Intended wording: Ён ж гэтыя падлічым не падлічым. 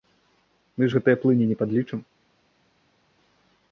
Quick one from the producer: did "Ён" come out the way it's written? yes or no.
no